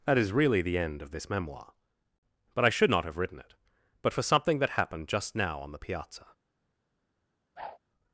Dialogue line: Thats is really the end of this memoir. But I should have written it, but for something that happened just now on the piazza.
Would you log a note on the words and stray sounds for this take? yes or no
yes